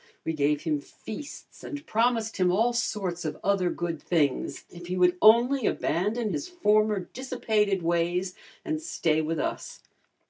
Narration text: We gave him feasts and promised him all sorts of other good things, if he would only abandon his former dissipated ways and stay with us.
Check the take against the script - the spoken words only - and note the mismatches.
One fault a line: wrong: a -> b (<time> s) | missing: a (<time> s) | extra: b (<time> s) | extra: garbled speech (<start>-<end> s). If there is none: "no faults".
no faults